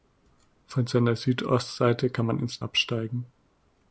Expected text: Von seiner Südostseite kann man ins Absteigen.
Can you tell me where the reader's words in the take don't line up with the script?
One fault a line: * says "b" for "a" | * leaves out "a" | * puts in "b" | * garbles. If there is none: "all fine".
all fine